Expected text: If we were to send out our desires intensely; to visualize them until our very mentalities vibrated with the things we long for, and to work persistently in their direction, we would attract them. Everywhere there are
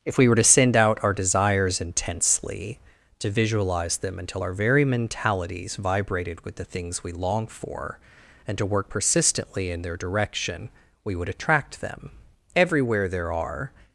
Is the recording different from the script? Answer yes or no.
no